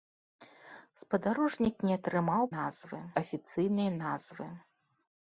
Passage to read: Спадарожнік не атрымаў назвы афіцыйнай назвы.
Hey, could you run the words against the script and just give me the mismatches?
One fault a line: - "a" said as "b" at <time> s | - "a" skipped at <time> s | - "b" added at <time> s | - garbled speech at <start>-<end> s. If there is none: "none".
none